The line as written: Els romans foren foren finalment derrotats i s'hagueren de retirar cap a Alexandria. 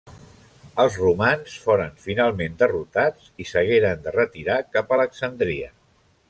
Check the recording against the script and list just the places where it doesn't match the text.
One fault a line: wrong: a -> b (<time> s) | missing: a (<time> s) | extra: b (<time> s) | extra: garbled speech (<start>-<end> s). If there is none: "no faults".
missing: foren (1.9 s)